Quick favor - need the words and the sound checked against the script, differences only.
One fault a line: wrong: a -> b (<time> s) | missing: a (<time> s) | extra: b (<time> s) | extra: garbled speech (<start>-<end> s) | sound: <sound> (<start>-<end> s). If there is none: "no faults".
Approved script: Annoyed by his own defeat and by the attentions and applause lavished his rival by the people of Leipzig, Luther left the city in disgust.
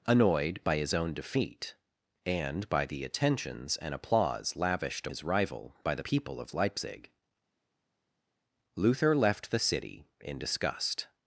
no faults